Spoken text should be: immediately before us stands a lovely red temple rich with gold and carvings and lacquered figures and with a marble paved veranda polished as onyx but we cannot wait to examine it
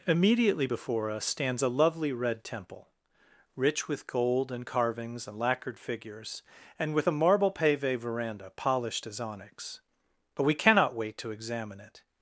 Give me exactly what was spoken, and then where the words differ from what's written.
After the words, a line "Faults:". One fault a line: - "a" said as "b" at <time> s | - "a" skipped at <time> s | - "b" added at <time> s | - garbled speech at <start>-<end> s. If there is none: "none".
immediately before us stands a lovely red temple rich with gold and carvings and lacquered figures and with a marble pave veranda polished as onyx but we cannot wait to examine it
Faults:
- "paved" said as "pave" at 7.5 s